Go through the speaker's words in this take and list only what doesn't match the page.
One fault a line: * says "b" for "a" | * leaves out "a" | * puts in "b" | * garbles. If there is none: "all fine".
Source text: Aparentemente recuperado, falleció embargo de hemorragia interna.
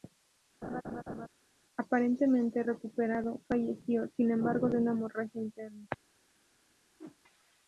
* puts in "sin"
* puts in "una"